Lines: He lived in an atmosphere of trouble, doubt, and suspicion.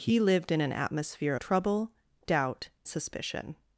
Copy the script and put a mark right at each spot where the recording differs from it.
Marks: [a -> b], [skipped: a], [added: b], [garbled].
He lived in an atmosphere [skipped: of] trouble, doubt, [skipped: and] suspicion.